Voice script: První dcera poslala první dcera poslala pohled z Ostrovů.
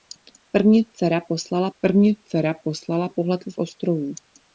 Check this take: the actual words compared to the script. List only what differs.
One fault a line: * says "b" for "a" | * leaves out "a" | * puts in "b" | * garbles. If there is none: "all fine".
all fine